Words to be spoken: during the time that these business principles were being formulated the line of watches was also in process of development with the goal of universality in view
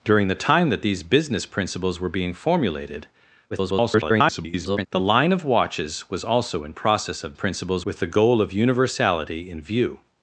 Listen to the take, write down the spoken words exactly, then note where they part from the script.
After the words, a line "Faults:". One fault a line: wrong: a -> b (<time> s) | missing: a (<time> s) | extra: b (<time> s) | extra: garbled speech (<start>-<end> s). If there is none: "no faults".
during the time that these business principles were being formulated [garbled] the line of watches was also in process of principles with the goal of universality in view
Faults:
extra: garbled speech (3.5-4.9 s)
wrong: development -> principles (7.3 s)